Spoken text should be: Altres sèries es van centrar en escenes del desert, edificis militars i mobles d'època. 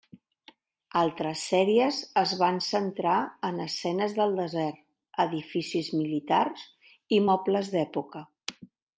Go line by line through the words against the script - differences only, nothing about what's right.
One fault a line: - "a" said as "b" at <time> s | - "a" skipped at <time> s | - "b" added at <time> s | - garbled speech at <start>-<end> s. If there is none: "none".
none